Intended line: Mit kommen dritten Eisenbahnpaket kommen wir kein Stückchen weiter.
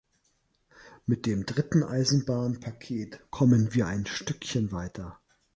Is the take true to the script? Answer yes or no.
no